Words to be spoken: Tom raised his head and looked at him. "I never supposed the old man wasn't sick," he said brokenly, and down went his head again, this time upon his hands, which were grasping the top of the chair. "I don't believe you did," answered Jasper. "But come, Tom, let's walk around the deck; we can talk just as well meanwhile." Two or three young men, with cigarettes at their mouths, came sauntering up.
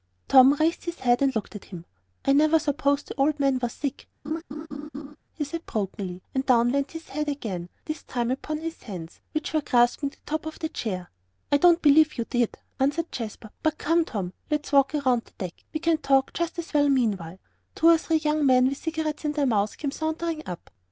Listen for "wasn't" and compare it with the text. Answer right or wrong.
wrong